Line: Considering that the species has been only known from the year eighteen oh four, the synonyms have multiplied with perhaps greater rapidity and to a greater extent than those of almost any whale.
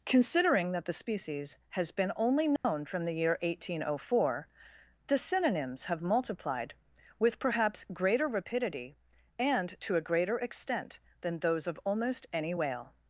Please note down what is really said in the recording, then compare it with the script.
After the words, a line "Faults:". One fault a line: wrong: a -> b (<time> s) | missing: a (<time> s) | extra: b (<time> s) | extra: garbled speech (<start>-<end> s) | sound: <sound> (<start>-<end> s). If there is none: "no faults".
Considering that the species has been only known from the year eighteen oh four, the synonyms have multiplied with perhaps greater rapidity and to a greater extent than those of almost any whale.
Faults:
sound: dropout (2.6-2.6 s)